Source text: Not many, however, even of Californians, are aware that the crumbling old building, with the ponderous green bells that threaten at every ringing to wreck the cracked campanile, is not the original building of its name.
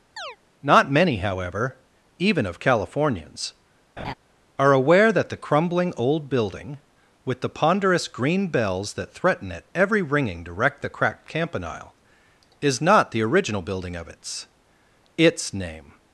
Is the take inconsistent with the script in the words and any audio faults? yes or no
yes